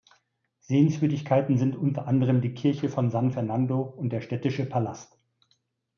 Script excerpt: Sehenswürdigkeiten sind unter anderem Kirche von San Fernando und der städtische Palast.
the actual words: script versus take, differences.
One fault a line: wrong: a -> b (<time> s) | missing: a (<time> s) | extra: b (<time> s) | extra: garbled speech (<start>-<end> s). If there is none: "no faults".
extra: die (2.4 s)